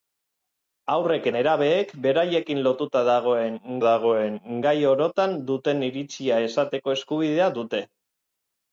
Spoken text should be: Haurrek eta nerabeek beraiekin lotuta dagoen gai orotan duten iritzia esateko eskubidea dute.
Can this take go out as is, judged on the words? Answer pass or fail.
fail